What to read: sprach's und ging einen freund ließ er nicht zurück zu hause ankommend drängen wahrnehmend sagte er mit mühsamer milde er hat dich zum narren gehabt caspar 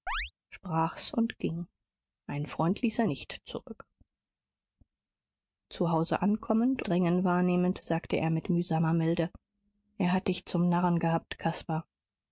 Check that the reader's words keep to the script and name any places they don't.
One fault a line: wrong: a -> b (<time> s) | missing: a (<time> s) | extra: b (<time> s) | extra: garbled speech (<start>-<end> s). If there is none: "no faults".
no faults